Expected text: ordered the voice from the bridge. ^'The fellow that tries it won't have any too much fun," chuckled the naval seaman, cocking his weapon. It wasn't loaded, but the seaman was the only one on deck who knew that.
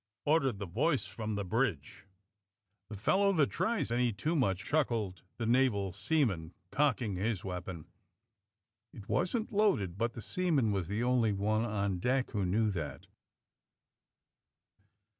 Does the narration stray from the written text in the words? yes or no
yes